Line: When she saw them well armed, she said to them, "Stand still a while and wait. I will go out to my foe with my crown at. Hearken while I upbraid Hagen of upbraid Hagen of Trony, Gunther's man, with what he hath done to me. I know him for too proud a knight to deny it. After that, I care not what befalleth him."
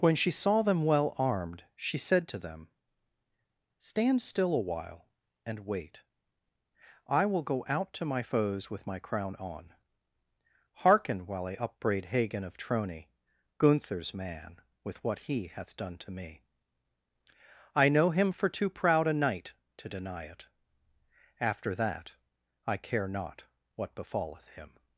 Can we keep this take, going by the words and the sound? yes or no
no